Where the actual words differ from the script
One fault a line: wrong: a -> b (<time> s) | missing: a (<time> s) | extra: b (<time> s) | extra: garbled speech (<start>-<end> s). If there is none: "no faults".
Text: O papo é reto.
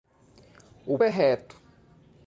missing: papo (1.0 s)